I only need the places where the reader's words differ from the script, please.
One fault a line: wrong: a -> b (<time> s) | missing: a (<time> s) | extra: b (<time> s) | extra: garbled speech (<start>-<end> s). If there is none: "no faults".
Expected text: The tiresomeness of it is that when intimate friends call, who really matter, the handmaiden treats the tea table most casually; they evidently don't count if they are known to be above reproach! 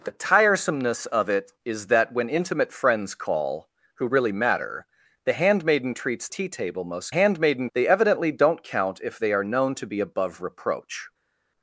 missing: the (6.3 s)
wrong: casually -> handmaiden (7.1 s)